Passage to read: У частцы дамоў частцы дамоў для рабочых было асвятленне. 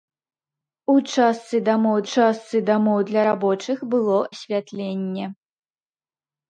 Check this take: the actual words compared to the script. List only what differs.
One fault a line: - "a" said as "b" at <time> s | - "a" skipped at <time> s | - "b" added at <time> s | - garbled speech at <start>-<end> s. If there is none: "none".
none